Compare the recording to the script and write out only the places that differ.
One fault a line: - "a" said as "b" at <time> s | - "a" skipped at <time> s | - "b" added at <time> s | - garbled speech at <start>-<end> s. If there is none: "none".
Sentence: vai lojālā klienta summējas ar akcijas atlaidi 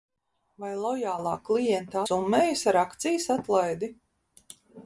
none